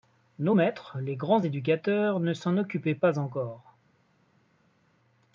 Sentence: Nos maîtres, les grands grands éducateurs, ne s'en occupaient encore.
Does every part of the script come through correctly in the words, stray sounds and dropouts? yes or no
no